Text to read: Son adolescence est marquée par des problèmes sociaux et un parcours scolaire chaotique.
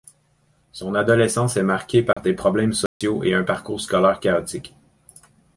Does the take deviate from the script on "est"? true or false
false